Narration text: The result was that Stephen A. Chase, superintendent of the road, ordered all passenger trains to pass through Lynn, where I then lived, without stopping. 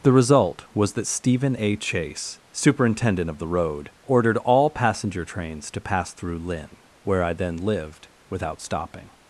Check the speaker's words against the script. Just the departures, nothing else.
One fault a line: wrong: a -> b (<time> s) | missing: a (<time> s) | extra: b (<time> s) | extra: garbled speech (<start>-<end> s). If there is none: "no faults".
no faults